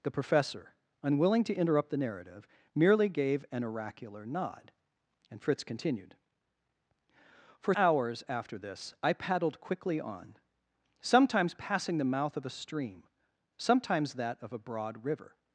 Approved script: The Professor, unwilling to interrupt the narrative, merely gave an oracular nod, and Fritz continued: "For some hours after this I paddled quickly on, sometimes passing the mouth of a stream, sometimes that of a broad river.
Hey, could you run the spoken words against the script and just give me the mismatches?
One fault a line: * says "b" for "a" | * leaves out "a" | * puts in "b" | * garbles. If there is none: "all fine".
* leaves out "some"